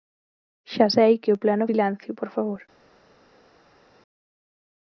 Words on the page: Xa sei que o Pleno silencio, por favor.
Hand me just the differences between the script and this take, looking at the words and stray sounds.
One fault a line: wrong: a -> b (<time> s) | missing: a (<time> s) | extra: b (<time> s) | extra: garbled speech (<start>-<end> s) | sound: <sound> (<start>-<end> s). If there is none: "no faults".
no faults